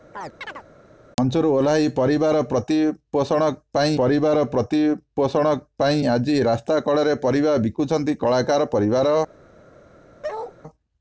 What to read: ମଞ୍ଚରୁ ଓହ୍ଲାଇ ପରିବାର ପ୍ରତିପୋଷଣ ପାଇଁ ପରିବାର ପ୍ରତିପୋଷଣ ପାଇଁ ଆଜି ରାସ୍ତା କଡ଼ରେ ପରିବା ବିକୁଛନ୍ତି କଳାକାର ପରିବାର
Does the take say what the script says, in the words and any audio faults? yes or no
no